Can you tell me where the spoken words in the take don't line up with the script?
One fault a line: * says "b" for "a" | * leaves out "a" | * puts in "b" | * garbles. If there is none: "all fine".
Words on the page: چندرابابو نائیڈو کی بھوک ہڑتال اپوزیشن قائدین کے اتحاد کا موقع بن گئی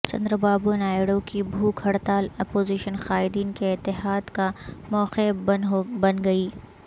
all fine